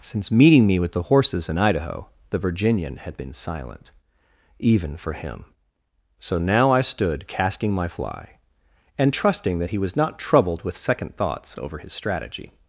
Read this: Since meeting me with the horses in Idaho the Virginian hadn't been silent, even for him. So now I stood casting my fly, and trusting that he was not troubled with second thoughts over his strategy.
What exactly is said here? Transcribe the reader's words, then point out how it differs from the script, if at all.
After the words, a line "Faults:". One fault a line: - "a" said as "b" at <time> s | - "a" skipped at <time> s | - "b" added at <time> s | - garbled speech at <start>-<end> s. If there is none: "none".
Since meeting me with the horses in Idaho the Virginian had been silent, even for him. So now I stood casting my fly, and trusting that he was not troubled with second thoughts over his strategy.
Faults:
- "hadn't" said as "had" at 3.0 s